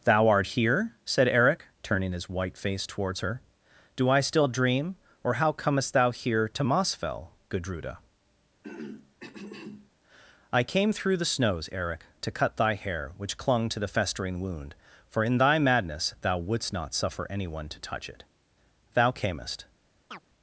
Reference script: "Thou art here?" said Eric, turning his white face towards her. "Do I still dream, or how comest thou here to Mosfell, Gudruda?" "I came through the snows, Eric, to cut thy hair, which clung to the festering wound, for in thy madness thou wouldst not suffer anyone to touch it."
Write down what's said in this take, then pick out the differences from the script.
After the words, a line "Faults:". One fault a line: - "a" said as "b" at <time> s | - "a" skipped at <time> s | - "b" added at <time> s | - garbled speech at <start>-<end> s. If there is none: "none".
"Thou art here?" said Eric, turning his white face towards her. "Do I still dream, or how comest thou here to Mosfell, Gudruda?" "I came through the snows, Eric, to cut thy hair, which clung to the festering wound, for in thy madness thou wouldst not suffer anyone to touch it." "Thou camest
Faults:
- "Thou camest" added at 18.9 s